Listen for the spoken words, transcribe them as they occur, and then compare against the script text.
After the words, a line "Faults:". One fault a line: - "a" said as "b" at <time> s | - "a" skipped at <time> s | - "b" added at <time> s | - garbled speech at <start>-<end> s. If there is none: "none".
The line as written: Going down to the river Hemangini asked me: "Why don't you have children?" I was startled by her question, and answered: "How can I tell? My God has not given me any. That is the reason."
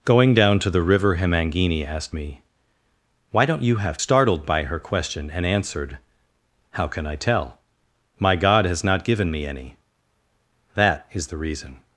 Going down to the river Hemangini asked me: "Why don't you have startled by her question, and answered: "How can I tell? My God has not given me any. That is the reason."
Faults:
- "children I was" skipped at 4.0 s